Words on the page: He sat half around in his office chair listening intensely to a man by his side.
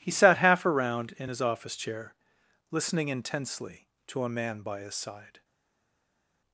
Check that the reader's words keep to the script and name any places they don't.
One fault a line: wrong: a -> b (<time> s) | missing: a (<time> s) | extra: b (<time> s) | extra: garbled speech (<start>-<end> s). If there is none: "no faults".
no faults